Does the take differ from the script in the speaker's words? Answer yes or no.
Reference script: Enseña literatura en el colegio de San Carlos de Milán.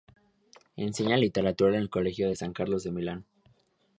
no